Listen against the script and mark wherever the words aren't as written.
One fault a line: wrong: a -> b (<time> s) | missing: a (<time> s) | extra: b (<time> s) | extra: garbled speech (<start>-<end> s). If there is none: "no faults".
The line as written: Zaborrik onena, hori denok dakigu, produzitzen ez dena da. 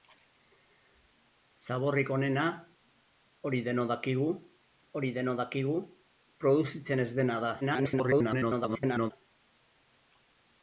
extra: hori denok dakigu (5.0 s)
extra: garbled speech (7.6-9.1 s)